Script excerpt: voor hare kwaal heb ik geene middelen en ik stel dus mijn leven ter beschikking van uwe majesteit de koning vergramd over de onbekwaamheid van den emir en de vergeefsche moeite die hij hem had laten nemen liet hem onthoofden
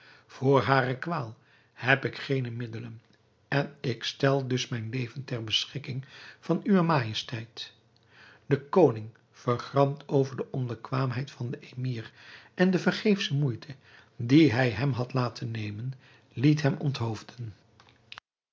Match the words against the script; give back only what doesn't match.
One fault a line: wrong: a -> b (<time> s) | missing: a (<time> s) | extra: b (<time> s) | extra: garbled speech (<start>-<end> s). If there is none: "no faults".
no faults